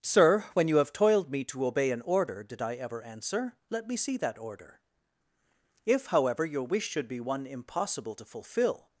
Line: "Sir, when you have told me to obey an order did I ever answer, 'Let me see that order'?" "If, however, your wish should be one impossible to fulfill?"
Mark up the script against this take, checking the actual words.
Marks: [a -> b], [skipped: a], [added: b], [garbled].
"Sir, when you have [told -> toiled] me to obey an order did I ever answer, 'Let me see that order'?" "If, however, your wish should be one impossible to fulfill?"